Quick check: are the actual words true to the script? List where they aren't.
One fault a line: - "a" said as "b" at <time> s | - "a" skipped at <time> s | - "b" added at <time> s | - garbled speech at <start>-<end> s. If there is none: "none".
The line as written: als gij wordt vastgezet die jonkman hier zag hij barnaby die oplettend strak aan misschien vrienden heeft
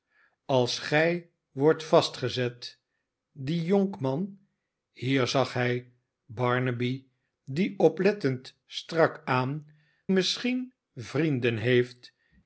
none